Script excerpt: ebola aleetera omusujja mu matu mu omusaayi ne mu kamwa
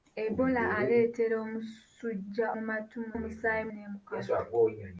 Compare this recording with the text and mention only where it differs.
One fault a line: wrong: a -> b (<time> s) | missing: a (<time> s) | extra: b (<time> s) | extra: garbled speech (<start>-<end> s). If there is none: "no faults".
no faults